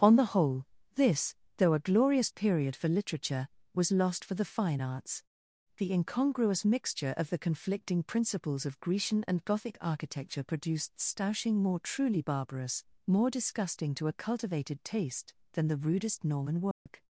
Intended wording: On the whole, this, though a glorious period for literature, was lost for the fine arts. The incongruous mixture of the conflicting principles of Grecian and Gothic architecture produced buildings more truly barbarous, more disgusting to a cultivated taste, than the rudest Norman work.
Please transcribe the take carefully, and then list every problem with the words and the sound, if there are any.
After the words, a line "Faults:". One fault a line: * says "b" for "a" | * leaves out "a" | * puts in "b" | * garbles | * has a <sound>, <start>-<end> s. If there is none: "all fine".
On the whole, this, though a glorious period for literature, was lost for the fine arts. The incongruous mixture of the conflicting principles of Grecian and Gothic architecture produced stoushing more truly barbarous, more disgusting to a cultivated taste, than the rudest Norman work.
Faults:
* says "stoushing" for "buildings"
* has a dropout, 16.7-16.9 s